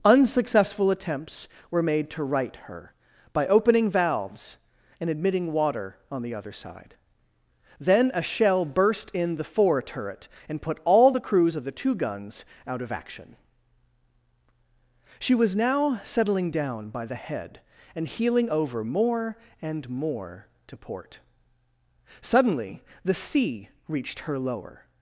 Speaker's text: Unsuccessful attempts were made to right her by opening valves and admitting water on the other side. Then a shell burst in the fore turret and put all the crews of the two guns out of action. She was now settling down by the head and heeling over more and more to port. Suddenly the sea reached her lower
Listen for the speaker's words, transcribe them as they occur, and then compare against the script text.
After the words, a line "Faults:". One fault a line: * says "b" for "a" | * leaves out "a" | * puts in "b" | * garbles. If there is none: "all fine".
Unsuccessful attempts were made to right her by opening valves and admitting water on the other side. Then a shell burst in the fore turret and put all the crews of the two guns out of action. She was now settling down by the head and heeling over more and more to port. Suddenly the sea reached her lower
Faults:
all fine